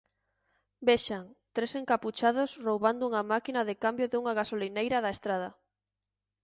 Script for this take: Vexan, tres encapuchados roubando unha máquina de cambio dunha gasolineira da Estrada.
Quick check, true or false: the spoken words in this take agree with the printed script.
true